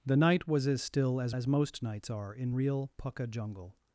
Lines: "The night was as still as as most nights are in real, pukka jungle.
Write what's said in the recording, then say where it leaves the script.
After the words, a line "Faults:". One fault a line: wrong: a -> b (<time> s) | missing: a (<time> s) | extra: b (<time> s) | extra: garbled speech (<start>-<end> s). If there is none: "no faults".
"The night was as still as as most nights are in real, pukka jungle.
Faults:
no faults